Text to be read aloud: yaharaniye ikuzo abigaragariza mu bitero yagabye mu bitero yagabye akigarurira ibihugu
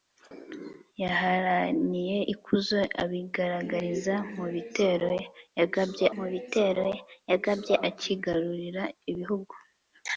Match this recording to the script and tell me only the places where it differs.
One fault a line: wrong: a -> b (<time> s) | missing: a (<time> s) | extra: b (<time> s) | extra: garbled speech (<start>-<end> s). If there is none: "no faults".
no faults